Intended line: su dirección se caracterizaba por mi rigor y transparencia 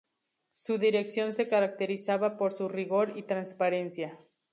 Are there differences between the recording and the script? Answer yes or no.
yes